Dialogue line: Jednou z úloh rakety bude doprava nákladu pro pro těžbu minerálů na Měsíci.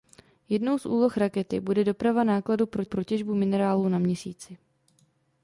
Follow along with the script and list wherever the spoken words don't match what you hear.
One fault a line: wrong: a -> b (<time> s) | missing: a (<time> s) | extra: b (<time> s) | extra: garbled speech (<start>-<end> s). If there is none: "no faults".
no faults